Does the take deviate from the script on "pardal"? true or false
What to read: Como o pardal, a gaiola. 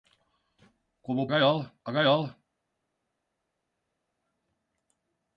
true